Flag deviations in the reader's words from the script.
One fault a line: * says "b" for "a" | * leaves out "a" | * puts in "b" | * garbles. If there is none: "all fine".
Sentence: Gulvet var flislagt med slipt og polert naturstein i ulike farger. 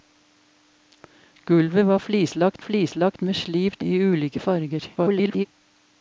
* puts in "flislagt"
* leaves out "og polert naturstein"
* garbles